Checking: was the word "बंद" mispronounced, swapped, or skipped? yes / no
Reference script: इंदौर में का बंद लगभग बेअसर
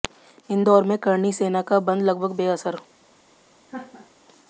no